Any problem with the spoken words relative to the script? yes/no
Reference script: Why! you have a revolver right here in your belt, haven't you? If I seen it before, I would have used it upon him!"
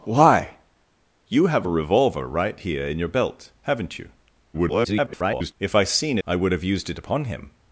yes